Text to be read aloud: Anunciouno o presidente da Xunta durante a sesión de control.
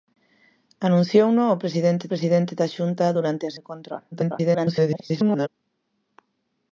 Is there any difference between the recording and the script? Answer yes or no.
yes